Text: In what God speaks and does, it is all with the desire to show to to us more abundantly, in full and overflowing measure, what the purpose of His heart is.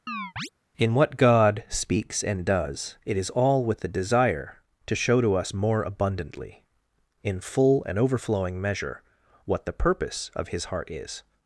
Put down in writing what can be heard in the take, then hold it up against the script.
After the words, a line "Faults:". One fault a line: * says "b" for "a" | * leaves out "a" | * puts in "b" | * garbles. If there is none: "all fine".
In what God speaks and does, it is all with the desire to show to us more abundantly, in full and overflowing measure, what the purpose of His heart is.
Faults:
* leaves out "to"